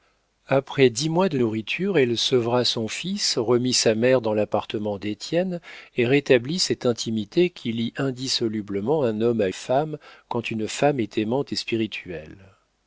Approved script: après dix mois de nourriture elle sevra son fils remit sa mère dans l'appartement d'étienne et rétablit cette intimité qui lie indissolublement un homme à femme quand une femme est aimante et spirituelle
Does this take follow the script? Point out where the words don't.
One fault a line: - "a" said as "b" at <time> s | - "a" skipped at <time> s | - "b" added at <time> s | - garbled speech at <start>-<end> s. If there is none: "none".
none